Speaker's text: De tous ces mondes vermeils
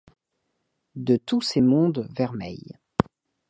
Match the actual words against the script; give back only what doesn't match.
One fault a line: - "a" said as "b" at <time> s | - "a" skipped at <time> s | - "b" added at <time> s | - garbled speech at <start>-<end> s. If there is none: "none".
none